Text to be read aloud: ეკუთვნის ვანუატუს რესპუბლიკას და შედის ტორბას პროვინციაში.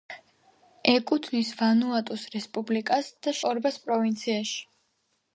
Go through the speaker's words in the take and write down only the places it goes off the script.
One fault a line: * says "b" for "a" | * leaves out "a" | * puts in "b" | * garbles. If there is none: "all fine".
* leaves out "შედის"